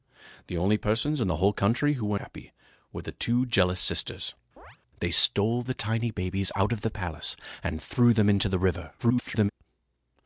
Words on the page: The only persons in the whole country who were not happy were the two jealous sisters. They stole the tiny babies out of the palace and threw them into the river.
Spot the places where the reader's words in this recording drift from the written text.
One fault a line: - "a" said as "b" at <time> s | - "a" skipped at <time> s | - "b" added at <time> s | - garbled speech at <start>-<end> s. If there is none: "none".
- "not" skipped at 2.2 s
- garbled speech at 9.0-9.5 s